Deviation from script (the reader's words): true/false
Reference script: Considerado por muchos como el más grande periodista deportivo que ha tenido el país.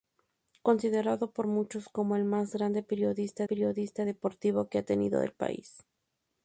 true